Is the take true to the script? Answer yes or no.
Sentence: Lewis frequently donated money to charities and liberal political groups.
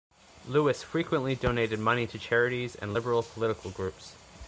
yes